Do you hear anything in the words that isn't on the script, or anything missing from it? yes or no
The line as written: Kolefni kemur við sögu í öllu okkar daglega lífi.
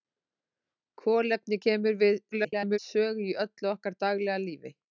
yes